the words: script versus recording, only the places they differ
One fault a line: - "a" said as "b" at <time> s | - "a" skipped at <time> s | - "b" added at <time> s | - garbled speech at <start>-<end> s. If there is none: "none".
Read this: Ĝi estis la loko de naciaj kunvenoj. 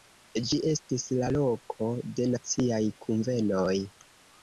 none